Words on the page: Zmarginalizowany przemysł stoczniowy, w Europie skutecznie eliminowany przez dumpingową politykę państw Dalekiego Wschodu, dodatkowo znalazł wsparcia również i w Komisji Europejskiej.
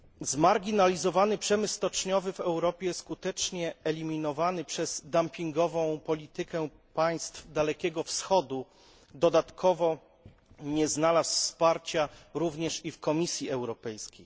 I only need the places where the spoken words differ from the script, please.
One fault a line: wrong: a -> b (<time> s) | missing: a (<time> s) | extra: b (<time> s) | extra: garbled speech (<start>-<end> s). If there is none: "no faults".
extra: nie (10.6 s)